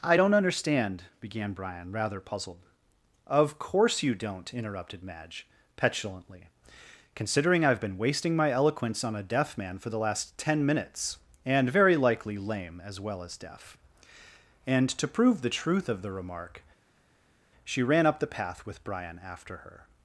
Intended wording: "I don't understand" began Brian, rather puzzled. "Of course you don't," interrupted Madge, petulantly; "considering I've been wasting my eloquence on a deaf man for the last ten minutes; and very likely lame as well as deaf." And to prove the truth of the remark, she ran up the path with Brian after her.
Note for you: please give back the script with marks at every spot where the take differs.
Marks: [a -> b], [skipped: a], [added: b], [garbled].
"I don't understand" began Brian, rather puzzled. "Of course you don't," interrupted Madge, petulantly; "considering I've been wasting my eloquence on a deaf man for the last ten minutes; and very likely lame as well as deaf." And to prove the truth of the remark, she ran up the path with Brian after her.